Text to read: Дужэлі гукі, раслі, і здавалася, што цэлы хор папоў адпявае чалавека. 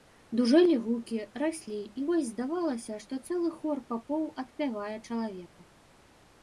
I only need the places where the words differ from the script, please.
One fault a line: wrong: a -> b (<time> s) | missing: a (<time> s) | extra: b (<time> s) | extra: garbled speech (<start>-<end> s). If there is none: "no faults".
extra: вось (2.1 s)